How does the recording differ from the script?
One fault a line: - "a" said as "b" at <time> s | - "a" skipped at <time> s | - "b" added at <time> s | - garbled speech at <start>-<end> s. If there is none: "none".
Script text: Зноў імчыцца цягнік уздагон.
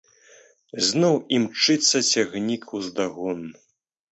none